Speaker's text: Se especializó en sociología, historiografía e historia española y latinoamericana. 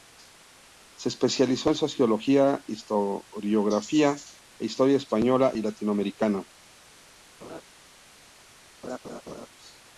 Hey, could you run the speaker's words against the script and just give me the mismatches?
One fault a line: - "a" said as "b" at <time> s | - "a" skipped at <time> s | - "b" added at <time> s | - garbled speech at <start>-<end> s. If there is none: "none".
none